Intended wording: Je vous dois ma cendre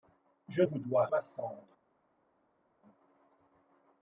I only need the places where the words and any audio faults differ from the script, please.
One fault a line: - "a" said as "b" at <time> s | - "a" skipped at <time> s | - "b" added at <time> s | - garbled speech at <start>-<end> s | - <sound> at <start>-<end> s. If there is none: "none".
none